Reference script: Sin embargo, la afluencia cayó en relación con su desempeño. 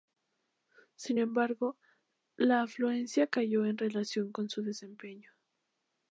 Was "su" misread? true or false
false